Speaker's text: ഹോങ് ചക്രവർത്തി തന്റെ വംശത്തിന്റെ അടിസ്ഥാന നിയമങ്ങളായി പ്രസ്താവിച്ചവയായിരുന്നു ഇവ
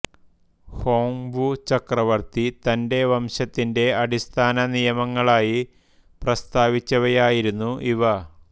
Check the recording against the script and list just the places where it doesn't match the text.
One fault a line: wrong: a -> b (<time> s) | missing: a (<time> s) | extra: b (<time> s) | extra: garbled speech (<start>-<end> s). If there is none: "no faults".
extra: വു (1.3 s)